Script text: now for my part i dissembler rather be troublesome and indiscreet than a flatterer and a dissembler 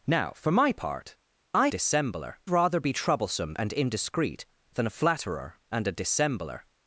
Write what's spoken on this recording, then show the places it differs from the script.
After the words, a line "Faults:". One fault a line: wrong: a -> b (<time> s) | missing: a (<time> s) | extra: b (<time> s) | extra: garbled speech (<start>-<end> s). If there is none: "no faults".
now for my part i dissembler rather be troublesome and indiscreet than a flatterer and a dissembler
Faults:
no faults